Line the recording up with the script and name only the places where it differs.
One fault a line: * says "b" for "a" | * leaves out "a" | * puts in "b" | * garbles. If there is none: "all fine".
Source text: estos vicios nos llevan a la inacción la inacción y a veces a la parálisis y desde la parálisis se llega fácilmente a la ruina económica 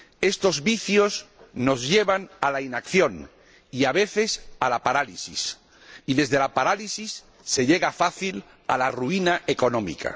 * leaves out "la inacción"